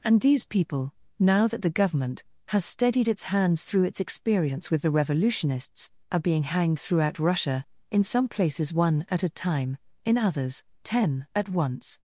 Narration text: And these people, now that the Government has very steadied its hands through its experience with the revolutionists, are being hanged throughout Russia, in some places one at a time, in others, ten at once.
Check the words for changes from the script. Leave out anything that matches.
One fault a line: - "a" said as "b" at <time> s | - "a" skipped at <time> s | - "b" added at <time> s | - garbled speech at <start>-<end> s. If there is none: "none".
- "very" skipped at 2.6 s